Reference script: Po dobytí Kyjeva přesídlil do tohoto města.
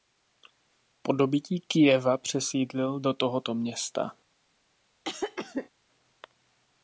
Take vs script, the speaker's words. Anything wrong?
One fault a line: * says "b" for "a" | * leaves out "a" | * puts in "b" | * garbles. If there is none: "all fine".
all fine